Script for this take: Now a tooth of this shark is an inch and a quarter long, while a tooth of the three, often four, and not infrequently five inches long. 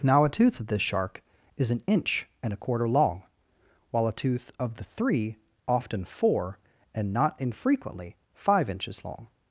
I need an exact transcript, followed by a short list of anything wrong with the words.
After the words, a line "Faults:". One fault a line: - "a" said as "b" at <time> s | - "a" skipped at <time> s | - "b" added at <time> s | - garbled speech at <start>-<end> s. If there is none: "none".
Now a tooth of this shark is an inch and a quarter long, while a tooth of the three, often four, and not infrequently five inches long.
Faults:
none